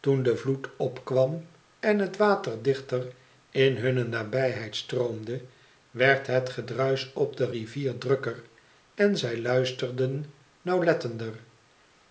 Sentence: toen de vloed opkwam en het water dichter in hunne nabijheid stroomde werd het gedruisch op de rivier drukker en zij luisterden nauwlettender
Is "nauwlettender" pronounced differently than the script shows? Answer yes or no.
no